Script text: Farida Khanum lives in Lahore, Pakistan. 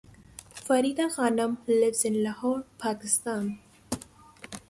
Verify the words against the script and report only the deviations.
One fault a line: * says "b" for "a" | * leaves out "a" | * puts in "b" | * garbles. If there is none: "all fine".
all fine